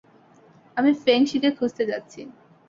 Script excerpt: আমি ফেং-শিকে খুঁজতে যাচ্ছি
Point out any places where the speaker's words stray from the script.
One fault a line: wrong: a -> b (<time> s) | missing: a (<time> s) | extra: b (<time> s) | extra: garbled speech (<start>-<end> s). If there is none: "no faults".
no faults